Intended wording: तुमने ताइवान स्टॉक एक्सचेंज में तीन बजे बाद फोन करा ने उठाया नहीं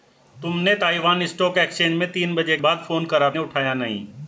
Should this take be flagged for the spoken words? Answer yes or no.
no